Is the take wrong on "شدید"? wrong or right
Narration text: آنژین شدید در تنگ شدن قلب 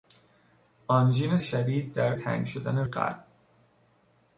right